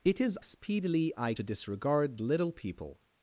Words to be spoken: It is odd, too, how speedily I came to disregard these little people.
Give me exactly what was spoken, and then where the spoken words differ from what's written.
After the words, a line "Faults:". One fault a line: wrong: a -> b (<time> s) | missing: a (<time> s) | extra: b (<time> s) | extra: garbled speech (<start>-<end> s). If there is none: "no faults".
It is speedily I to disregard little people.
Faults:
missing: odd too how (0.4 s)
missing: came (1.3 s)
missing: these (2.2 s)